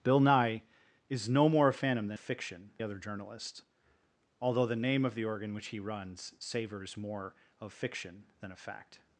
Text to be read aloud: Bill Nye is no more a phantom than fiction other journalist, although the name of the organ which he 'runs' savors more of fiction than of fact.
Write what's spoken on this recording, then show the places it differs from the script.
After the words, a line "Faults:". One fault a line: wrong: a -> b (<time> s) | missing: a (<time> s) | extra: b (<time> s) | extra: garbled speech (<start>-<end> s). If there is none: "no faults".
Bill Nye is no more a phantom than fiction other journalist, although the name of the organ which he 'runs' savors more of fiction than of fact.
Faults:
no faults